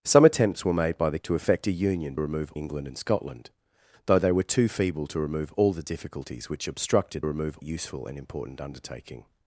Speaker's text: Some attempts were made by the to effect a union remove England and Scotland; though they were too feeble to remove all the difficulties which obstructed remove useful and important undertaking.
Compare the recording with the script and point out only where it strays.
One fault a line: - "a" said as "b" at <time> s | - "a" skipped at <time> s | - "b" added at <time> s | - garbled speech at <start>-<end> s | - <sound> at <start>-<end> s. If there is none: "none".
none